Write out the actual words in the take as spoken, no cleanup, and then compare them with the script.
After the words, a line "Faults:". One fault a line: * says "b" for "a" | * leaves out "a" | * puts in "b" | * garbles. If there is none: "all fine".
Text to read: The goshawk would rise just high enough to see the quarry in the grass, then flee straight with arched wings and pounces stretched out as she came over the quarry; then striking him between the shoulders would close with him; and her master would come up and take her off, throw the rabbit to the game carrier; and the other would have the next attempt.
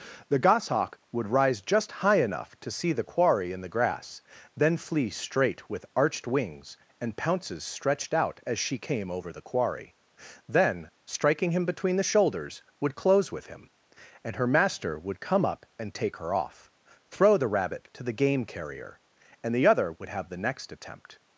The goshawk would rise just high enough to see the quarry in the grass, then flee straight with arched wings and pounces stretched out as she came over the quarry; then striking him between the shoulders would close with him; and her master would come up and take her off, throw the rabbit to the game carrier; and the other would have the next attempt.
Faults:
all fine